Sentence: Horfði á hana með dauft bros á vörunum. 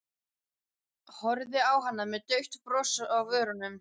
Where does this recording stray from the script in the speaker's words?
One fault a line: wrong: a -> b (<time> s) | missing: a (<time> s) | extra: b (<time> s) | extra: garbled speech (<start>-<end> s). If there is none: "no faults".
no faults